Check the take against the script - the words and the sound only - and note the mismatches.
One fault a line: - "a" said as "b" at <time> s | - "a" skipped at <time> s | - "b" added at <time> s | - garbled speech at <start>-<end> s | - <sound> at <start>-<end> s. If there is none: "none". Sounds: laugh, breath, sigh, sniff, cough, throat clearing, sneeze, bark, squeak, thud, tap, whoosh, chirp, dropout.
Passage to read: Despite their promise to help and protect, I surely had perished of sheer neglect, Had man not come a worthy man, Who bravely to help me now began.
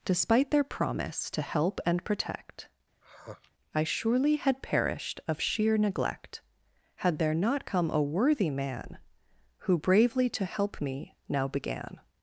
- sigh at 3.0-3.5 s
- "man" said as "there" at 7.2 s